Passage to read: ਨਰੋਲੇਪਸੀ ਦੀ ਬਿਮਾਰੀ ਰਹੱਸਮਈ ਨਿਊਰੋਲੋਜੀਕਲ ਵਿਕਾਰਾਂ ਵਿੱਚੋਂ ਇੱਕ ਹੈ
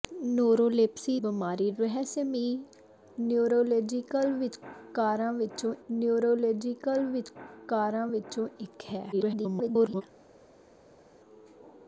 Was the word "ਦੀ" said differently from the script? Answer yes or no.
yes